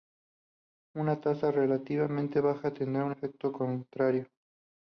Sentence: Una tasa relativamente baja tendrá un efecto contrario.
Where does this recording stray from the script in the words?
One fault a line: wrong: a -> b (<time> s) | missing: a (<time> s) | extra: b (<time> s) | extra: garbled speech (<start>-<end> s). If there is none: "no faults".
no faults